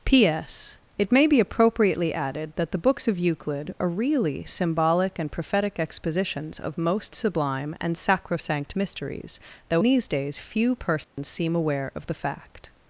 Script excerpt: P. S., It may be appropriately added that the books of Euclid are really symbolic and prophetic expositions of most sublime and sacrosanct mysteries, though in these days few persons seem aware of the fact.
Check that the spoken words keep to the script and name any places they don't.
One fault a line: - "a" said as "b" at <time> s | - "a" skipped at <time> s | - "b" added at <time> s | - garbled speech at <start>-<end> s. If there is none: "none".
- "in" skipped at 9.8 s